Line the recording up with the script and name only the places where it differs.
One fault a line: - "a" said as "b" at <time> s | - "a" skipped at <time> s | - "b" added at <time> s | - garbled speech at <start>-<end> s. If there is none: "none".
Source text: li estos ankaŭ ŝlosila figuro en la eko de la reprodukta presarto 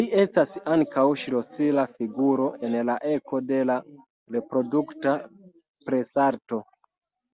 - "estos" said as "estas" at 0.2 s